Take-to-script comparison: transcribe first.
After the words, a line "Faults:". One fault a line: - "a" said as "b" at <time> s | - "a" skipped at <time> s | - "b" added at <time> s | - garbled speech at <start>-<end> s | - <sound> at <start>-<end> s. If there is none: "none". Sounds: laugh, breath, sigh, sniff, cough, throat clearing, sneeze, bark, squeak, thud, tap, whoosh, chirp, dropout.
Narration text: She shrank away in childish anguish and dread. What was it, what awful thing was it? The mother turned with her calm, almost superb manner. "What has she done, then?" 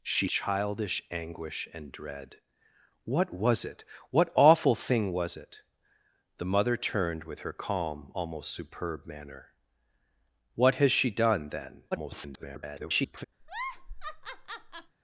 She childish anguish and dread. What was it, what awful thing was it? The mother turned with her calm, almost superb manner. "What has she done, then?" [garbled]
Faults:
- "shrank away in" skipped at 0.3 s
- garbled speech at 11.9-13.2 s
- laugh at 13.4-15.0 s